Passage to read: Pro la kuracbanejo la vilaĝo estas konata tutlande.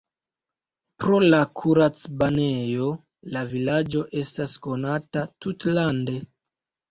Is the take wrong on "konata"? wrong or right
right